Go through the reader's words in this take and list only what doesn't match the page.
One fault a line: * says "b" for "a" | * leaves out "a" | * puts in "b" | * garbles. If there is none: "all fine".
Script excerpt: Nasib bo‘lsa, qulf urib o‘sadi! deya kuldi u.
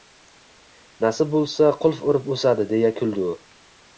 all fine